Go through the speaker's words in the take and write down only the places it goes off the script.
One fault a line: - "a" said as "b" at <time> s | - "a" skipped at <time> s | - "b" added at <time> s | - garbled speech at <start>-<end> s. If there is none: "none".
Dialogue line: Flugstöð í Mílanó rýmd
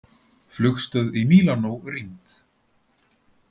none